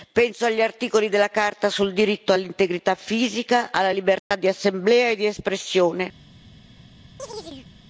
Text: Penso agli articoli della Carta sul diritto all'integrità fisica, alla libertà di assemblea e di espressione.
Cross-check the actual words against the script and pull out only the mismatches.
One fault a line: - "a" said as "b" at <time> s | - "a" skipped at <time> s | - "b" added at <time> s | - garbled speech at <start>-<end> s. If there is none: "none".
none